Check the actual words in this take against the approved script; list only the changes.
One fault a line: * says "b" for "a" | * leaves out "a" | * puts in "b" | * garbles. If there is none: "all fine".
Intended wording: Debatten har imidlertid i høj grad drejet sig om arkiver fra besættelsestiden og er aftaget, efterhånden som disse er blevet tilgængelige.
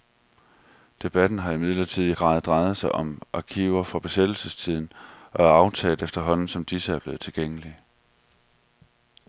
* leaves out "høj"